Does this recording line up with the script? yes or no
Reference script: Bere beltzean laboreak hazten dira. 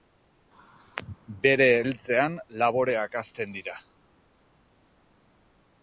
yes